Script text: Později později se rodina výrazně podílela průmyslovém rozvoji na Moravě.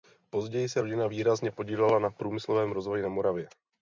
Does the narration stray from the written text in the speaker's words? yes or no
yes